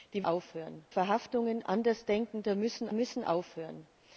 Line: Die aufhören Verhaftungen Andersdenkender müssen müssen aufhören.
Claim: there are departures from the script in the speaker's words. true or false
false